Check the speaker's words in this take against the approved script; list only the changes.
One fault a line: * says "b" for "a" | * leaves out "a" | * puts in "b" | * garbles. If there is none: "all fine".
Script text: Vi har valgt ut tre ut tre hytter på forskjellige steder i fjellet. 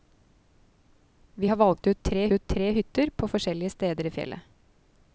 all fine